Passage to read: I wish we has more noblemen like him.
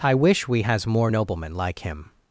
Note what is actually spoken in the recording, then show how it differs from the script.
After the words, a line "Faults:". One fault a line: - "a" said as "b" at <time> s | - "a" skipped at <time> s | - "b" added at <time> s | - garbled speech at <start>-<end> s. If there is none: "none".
I wish we has more noblemen like him.
Faults:
none